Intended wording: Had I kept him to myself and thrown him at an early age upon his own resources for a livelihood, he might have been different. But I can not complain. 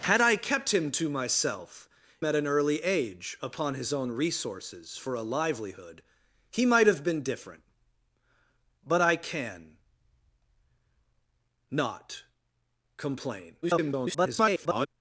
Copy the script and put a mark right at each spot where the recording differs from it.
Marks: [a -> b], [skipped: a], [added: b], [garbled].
Had I kept him to myself [skipped: and thrown him] at an early age upon his own resources for a livelihood, he might have been different. But I can not complain. [garbled]